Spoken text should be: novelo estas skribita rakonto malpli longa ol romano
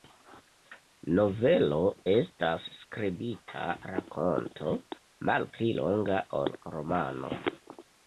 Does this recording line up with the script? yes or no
yes